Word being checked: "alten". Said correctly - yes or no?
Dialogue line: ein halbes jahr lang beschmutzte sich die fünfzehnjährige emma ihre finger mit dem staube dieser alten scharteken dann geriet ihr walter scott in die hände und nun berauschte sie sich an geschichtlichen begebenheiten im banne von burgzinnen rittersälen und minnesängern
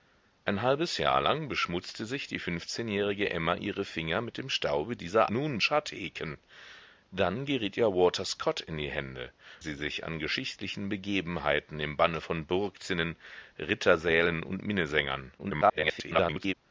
no